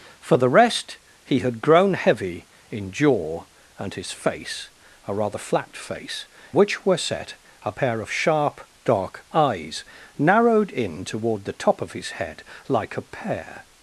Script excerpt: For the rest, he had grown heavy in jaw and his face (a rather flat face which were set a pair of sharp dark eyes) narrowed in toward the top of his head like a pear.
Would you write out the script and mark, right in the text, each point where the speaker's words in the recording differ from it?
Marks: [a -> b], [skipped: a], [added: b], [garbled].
For the rest, he had grown heavy in jaw and his face (a rather flat face which were set a pair of sharp dark eyes) narrowed in toward the top of his head like a pear.